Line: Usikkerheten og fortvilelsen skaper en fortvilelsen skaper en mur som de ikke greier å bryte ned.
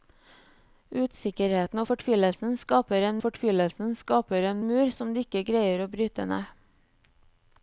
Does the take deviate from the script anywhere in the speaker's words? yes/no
no